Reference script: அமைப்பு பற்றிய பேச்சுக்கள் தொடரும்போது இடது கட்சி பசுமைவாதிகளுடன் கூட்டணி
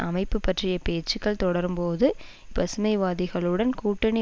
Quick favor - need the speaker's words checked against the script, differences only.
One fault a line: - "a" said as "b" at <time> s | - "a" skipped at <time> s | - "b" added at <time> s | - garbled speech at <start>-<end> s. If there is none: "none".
- "இடது கட்சி" skipped at 2.1 s